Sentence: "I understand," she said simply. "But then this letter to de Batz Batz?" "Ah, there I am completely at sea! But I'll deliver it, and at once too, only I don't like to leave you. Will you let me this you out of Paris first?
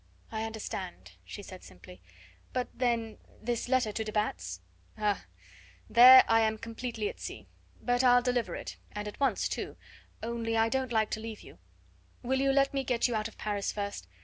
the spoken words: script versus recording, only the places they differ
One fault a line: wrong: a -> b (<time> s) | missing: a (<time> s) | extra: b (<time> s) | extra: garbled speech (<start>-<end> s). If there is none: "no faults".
missing: Batz (4.6 s)
wrong: this -> get (12.8 s)